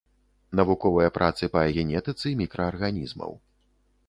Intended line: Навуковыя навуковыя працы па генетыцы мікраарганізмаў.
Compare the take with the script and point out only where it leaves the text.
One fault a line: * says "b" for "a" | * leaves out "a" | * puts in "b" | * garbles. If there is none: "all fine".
* leaves out "навуковыя"